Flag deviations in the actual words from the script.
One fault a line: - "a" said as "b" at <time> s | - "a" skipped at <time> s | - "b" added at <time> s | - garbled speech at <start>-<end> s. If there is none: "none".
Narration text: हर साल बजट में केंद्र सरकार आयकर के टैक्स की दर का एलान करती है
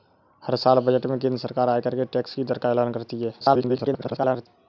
- garbled speech at 3.4-4.5 s